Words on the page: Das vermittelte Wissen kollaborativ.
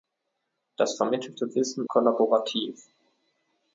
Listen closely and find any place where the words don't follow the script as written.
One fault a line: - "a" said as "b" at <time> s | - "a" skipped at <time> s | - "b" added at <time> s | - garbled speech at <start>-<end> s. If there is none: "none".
none